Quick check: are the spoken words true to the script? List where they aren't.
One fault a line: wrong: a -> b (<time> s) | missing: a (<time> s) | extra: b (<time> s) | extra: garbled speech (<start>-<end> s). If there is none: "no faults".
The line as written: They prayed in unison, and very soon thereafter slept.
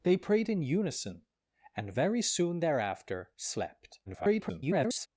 extra: garbled speech (4.1-5.1 s)